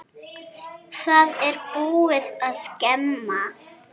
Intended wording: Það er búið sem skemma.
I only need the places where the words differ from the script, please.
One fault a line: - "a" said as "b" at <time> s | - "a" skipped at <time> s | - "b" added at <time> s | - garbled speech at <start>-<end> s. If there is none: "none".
- "sem" said as "að" at 2.5 s